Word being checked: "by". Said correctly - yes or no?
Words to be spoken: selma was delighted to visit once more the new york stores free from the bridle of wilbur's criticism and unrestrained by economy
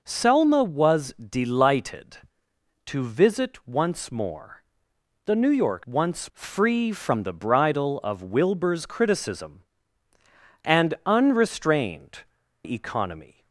no